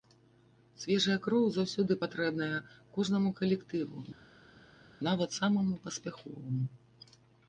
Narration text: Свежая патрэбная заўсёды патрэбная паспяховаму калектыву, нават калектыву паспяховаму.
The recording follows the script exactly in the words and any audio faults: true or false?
false